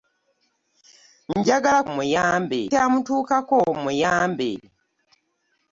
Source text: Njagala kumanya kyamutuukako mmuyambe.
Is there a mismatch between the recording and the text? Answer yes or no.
yes